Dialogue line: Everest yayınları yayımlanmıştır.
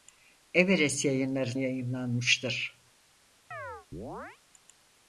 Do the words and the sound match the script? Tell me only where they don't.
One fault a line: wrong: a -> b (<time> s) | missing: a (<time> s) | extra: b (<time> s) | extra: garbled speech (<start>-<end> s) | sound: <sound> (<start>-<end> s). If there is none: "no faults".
sound: chirp (3.5-4.4 s)